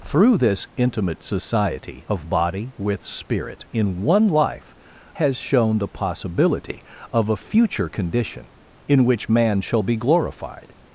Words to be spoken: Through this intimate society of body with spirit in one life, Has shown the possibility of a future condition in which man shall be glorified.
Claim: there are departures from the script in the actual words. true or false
false